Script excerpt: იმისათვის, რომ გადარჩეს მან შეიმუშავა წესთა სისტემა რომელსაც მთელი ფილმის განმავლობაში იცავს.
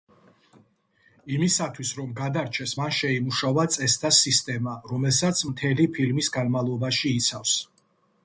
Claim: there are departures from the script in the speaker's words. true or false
false